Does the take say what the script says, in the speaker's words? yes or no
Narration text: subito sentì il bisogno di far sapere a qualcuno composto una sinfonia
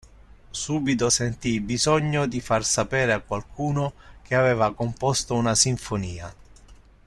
no